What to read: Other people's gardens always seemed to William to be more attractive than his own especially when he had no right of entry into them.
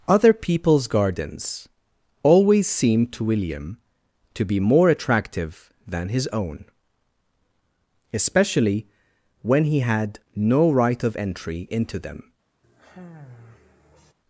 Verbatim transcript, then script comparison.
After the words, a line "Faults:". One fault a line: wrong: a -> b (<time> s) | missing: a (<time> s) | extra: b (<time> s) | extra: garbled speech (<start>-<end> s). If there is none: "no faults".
Other people's gardens always seemed to William to be more attractive than his own especially when he had no right of entry into them.
Faults:
no faults